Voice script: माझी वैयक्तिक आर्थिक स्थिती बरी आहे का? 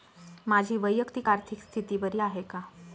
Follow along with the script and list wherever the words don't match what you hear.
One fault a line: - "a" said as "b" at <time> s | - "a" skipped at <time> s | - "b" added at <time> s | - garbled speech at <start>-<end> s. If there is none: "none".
none